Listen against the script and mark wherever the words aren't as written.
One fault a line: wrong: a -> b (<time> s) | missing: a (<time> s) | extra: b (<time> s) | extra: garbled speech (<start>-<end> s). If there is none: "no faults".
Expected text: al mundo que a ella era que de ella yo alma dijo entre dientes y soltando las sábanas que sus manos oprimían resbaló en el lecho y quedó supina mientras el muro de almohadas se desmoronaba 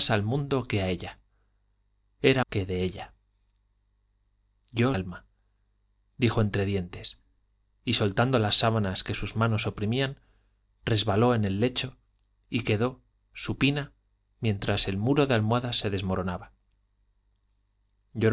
no faults